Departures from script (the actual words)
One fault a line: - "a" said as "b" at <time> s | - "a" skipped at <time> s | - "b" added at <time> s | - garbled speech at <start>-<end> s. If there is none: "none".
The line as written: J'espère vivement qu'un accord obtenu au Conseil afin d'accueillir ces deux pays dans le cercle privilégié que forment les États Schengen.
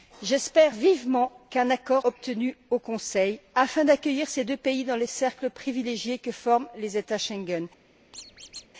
none